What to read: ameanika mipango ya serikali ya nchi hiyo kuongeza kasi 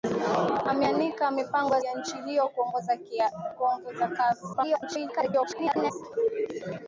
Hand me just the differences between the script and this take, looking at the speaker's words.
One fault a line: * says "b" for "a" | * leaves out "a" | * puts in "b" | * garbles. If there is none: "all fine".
* leaves out "serikali"
* garbles